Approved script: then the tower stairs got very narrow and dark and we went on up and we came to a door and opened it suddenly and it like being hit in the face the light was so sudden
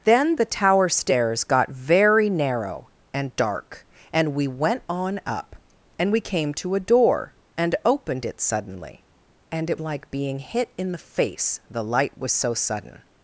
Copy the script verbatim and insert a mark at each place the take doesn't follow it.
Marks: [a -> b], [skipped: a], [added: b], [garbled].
then the tower stairs got very narrow and dark and we went on up and we came to a door and opened it suddenly and it like being hit in the face the light was so sudden